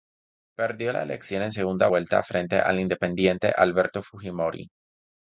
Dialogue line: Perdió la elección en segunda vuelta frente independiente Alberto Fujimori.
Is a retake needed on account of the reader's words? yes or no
yes